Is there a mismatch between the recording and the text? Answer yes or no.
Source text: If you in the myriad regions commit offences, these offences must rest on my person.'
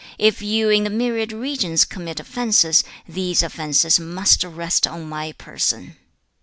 no